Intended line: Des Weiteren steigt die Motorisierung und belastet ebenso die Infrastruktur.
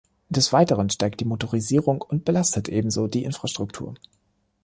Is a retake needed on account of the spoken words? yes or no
no